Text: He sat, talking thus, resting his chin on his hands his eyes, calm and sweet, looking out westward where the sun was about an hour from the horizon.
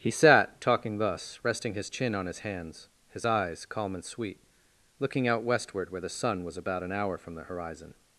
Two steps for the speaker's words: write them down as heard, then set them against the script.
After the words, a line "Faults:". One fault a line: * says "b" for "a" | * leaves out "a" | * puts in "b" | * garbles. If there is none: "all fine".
He sat, talking thus, resting his chin on his hands his eyes, calm and sweet, looking out westward where the sun was about an hour from the horizon.
Faults:
all fine